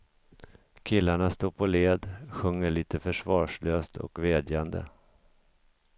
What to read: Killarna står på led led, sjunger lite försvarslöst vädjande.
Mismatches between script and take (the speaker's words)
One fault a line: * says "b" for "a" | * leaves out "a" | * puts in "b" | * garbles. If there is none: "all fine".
* leaves out "led"
* puts in "och"